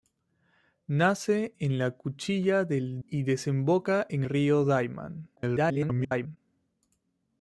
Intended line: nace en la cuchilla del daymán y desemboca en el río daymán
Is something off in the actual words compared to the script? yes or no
yes